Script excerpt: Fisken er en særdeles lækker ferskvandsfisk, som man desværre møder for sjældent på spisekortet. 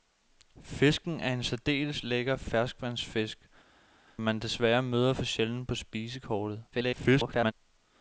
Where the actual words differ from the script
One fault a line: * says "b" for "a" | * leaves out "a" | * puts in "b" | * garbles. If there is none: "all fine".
* leaves out "som"
* garbles